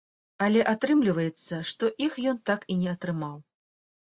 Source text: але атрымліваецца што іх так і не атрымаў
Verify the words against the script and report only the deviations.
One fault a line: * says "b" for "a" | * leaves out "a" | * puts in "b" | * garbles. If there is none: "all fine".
* puts in "ён"